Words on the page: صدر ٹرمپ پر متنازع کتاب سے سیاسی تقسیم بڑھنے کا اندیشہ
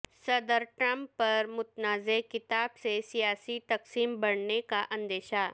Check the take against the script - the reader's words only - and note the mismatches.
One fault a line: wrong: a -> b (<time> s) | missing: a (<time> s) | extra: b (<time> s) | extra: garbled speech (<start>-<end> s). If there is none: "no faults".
no faults